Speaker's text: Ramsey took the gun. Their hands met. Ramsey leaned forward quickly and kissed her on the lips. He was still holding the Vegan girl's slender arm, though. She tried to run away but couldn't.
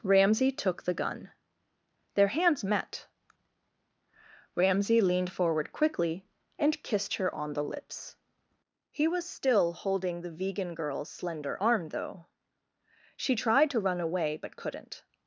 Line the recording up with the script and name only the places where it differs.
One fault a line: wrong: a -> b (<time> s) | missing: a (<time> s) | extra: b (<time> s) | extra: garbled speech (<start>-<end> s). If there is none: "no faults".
no faults